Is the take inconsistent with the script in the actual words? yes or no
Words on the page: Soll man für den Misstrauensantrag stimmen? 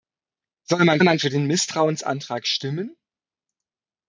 yes